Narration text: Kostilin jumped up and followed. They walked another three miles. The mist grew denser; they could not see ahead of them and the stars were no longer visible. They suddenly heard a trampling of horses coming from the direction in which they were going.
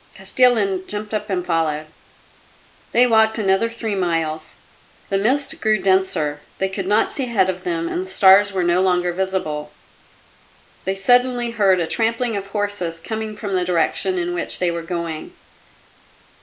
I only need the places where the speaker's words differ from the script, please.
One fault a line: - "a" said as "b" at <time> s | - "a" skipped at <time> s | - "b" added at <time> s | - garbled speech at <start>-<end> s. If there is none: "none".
none